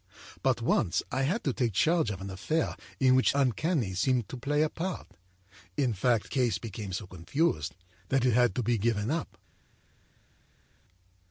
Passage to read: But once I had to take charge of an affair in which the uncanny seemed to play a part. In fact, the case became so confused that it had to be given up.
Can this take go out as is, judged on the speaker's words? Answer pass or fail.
fail